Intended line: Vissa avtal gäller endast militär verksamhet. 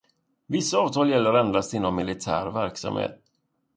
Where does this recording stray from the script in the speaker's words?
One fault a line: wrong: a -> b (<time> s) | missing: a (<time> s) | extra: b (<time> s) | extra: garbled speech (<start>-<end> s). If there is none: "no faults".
extra: inom (1.7 s)